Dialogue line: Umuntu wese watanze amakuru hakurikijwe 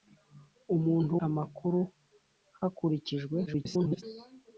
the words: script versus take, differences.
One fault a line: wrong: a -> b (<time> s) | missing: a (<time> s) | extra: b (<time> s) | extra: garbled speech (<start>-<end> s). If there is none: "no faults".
missing: wese watanze (1.1 s)
extra: garbled speech (3.5-4.0 s)